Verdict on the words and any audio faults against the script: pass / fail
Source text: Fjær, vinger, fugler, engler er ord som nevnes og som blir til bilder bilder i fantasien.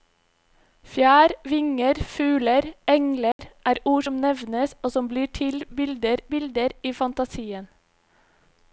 fail